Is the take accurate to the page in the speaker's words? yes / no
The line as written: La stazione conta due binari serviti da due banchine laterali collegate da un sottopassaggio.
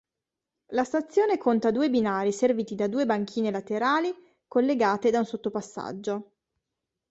yes